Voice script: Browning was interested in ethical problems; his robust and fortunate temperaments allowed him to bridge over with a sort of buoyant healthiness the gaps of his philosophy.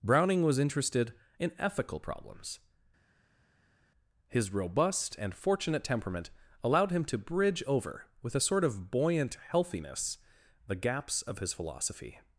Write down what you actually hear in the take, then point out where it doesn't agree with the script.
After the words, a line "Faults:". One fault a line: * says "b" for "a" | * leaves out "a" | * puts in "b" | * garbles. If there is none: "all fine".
Browning was interested in ethical problems; his robust and fortunate temperament allowed him to bridge over with a sort of buoyant healthiness the gaps of his philosophy.
Faults:
* says "temperament" for "temperaments"